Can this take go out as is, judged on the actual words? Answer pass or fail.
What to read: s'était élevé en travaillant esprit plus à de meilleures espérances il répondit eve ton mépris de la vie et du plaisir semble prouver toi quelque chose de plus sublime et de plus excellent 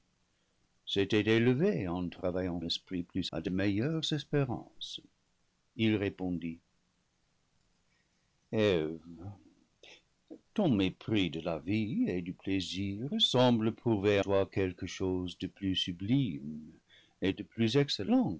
pass